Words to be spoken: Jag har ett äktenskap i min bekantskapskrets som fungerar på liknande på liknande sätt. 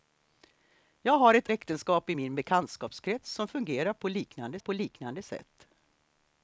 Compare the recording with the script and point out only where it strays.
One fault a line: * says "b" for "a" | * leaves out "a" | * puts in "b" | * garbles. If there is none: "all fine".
all fine